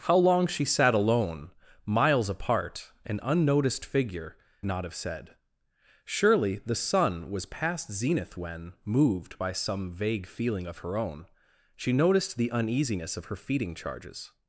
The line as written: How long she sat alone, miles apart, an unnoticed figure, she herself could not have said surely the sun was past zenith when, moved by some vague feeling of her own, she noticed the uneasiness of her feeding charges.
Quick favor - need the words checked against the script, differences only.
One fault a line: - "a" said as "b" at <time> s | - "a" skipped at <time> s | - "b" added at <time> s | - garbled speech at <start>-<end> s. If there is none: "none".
- "she herself could" skipped at 4.3 s